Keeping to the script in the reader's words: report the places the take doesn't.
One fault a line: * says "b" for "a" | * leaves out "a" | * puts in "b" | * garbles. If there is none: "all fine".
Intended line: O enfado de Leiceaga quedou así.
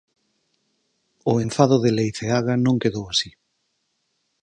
* puts in "non"